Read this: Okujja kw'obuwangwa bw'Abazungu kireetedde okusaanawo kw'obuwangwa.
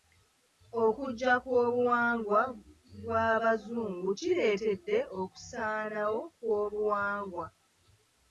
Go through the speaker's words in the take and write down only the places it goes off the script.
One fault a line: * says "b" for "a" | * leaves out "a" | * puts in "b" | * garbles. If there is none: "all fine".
all fine